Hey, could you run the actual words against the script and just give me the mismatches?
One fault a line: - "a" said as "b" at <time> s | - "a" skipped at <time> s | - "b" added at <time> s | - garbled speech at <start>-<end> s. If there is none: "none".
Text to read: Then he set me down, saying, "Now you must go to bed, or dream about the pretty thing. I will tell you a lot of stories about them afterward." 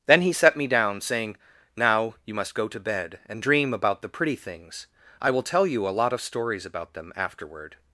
- "or" said as "and" at 3.3 s
- "thing" said as "things" at 4.4 s